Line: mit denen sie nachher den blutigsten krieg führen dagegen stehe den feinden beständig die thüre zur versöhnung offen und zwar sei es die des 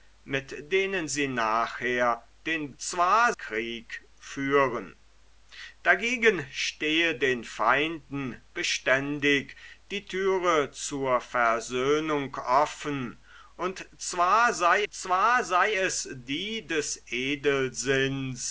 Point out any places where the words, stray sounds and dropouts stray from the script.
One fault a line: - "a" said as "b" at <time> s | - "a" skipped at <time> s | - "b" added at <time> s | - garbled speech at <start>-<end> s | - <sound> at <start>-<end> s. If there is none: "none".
- "blutigsten" said as "zwar" at 2.8 s
- "zwar sei" added at 14.9 s